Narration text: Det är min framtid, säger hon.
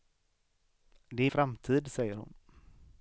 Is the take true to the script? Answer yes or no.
no